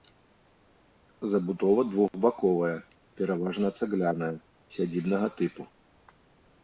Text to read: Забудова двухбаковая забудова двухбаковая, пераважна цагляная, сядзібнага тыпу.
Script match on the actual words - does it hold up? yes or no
no